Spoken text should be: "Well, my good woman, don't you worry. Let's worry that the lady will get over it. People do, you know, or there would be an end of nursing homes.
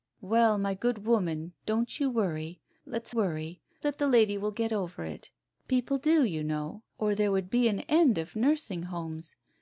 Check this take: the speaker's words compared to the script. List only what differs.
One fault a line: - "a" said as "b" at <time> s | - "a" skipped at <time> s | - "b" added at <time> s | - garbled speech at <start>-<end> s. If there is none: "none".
none